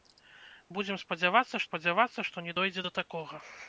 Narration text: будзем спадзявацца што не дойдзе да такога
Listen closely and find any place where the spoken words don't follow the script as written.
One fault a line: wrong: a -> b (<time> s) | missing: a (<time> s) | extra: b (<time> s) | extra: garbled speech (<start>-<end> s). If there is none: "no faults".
extra: спадзявацца (1.7 s)